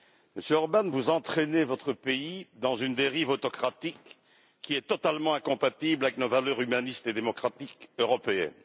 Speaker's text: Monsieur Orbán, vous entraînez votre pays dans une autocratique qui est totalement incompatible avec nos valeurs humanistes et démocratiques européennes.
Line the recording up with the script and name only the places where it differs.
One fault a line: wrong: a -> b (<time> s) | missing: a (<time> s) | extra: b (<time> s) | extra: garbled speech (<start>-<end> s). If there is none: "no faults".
extra: dérive (3.0 s)